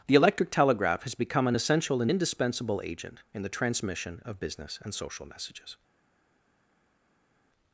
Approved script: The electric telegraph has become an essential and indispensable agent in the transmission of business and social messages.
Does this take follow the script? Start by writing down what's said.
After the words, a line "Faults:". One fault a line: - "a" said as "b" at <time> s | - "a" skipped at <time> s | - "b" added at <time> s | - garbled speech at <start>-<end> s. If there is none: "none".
The electric telegraph has become an essential and indispensable agent in the transmission of business and social messages.
Faults:
none